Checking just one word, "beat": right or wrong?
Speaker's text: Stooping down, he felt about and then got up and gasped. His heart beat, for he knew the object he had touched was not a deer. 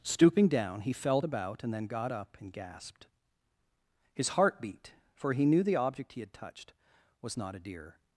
right